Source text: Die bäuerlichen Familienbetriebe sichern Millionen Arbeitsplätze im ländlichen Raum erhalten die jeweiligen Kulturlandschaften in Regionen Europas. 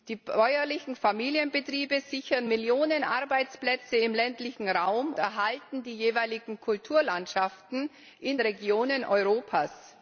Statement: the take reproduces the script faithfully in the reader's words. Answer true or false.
true